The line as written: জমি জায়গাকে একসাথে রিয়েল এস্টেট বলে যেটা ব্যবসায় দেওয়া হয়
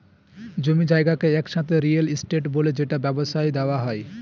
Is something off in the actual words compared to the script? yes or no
no